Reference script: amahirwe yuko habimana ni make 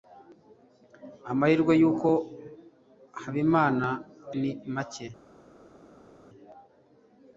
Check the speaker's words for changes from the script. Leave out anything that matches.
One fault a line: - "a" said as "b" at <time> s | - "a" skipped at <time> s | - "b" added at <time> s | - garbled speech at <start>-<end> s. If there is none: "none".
none